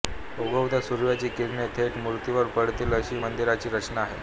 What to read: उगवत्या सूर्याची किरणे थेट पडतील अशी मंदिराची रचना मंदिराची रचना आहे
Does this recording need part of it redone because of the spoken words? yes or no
yes